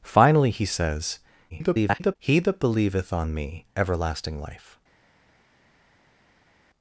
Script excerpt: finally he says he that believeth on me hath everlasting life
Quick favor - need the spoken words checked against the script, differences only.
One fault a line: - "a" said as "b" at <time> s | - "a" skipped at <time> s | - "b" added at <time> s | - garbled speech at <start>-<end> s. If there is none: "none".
- garbled speech at 1.5-2.2 s
- "hath" skipped at 3.7 s